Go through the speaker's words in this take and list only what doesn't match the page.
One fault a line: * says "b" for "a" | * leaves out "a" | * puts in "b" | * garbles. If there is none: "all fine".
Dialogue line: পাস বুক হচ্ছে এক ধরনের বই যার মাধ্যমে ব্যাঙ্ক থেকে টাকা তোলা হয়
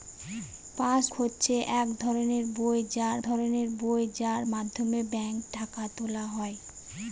* leaves out "বুক"
* puts in "ধরনের বই যার"
* leaves out "থেকে"